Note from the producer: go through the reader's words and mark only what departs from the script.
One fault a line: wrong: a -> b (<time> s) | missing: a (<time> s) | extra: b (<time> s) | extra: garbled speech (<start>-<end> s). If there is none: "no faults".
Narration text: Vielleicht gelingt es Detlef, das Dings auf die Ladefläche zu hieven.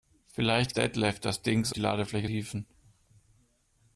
missing: gelingt es (0.7 s)
missing: auf (1.7 s)
missing: zu (2.3 s)